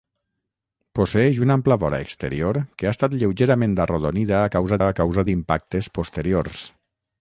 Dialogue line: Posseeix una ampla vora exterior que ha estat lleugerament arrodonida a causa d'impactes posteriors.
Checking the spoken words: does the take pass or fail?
fail